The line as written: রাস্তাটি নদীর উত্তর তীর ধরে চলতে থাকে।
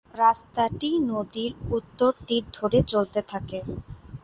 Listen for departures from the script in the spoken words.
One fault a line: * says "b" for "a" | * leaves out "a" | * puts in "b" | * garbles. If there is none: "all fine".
all fine